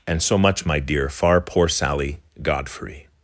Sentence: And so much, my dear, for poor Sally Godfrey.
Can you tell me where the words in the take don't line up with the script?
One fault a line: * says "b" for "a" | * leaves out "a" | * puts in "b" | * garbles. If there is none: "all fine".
* says "far" for "for"